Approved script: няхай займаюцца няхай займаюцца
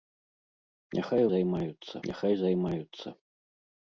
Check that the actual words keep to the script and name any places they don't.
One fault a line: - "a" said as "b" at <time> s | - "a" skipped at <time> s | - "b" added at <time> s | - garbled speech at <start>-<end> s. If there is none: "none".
none